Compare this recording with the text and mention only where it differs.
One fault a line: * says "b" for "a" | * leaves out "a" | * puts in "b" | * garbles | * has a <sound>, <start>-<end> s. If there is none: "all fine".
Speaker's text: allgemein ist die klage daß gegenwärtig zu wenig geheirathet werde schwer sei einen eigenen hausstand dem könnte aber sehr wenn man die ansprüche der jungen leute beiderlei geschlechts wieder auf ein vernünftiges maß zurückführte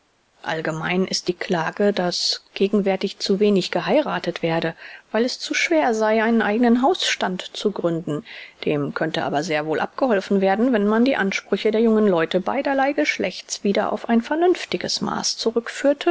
* puts in "weil es zu"
* puts in "zu gründen"
* puts in "wohl abgeholfen werden"